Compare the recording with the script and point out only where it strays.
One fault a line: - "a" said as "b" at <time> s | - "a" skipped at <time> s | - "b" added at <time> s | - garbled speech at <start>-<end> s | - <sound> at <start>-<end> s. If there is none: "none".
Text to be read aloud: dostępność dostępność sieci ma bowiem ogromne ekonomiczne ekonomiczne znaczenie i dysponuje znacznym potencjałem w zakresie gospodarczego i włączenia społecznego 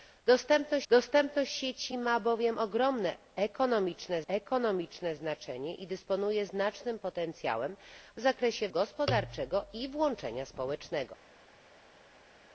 none